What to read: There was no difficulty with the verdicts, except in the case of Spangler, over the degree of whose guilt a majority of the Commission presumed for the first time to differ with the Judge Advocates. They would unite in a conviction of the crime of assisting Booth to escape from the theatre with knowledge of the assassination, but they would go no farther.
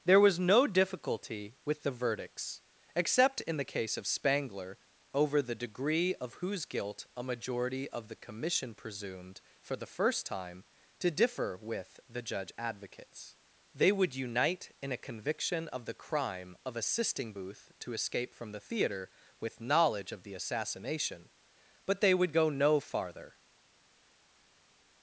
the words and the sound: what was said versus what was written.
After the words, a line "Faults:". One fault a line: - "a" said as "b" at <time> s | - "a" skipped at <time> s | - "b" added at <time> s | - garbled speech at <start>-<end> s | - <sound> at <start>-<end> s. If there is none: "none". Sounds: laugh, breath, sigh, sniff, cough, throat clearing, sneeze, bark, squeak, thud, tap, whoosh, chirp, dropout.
There was no difficulty with the verdicts, except in the case of Spangler, over the degree of whose guilt a majority of the Commission presumed for the first time to differ with the Judge Advocates. They would unite in a conviction of the crime of assisting Booth to escape from the theatre with knowledge of the assassination, but they would go no farther.
Faults:
none